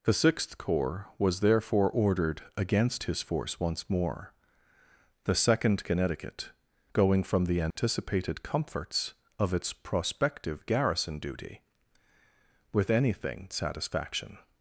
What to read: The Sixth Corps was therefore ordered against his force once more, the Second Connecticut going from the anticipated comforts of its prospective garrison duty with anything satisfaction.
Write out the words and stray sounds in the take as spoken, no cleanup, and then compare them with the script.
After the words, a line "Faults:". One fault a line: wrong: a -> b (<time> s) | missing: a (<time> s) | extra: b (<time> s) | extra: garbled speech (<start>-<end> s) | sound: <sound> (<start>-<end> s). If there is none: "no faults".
The Sixth Corps was therefore ordered against his force once more, the Second Connecticut going from the anticipated comforts of its prospective garrison duty with anything satisfaction.
Faults:
sound: dropout (7.7-7.8 s)